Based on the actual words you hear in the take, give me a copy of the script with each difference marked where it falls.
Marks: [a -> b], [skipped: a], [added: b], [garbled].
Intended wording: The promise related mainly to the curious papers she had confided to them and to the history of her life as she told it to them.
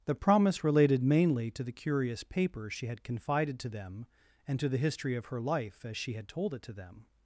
The promise related mainly to the curious papers she had confided to them and to the history of her life as she [added: had] told it to them.